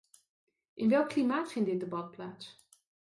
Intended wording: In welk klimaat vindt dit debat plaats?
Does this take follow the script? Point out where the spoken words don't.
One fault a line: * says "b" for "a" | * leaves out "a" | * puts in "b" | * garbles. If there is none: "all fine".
all fine